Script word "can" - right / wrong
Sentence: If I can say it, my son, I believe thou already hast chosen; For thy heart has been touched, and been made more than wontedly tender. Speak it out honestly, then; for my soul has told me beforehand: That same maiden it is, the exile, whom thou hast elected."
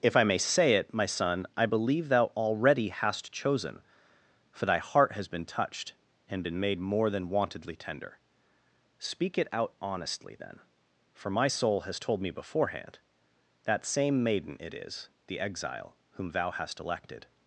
wrong